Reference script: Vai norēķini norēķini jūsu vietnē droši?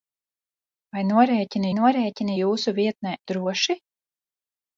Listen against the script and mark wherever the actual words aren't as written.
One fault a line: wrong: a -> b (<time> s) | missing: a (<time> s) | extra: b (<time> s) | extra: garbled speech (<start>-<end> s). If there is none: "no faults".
no faults